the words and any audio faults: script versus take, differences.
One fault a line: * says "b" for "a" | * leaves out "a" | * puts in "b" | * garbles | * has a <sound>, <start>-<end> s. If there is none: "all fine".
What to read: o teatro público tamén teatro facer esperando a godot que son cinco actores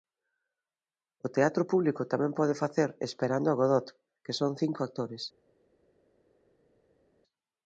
* says "pode" for "teatro"